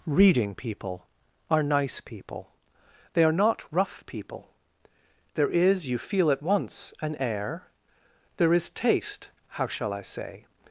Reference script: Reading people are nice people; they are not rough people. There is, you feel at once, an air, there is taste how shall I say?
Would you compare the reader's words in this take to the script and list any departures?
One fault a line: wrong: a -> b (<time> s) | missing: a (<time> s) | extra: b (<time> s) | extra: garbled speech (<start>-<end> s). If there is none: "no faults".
no faults